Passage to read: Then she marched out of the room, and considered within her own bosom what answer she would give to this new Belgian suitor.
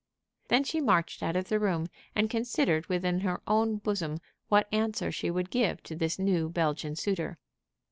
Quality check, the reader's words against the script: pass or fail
pass